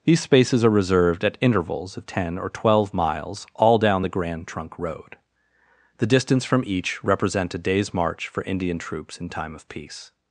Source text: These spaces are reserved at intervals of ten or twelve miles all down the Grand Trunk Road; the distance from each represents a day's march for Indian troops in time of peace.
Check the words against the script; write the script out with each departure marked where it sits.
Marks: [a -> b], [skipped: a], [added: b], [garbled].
These spaces are reserved at intervals of ten or twelve miles all down the Grand Trunk Road; the distance from each [represents -> represent] a day's march for Indian troops in time of peace.